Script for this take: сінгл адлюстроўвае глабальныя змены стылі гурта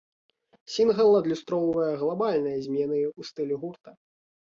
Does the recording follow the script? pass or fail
fail